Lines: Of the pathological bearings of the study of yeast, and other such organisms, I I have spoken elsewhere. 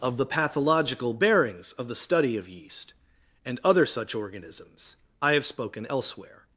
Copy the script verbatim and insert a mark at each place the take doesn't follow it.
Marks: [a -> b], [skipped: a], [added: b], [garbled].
Of the pathological bearings of the study of yeast, and other such organisms, I [skipped: I] have spoken elsewhere.